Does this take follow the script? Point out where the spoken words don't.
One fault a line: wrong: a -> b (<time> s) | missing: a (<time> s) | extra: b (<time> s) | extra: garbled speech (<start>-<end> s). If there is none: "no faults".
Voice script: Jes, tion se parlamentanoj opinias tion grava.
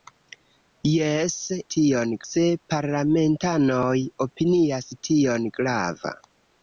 no faults